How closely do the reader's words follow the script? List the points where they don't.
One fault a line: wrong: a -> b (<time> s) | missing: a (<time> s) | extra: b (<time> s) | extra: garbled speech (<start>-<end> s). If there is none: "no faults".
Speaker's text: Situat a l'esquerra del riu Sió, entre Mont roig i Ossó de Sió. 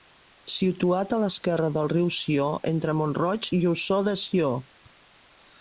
no faults